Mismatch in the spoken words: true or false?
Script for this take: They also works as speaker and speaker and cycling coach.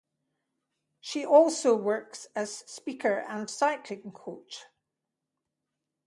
true